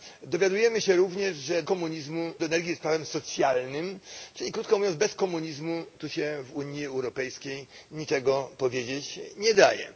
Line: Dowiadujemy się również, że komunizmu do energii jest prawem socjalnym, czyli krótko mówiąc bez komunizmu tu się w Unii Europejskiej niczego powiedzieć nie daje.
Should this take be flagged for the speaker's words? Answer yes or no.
no